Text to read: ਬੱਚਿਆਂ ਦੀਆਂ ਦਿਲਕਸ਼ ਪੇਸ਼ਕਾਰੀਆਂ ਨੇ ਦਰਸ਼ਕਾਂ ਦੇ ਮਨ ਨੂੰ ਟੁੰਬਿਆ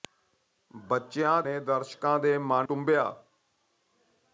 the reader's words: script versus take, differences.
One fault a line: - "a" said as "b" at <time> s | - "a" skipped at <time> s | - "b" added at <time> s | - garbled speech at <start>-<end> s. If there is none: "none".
- "ਦੀਆਂ ਦਿਲਕਸ਼ ਪੇਸ਼ਕਾਰੀਆਂ" skipped at 1.4 s
- "ਨੂੰ" skipped at 2.7 s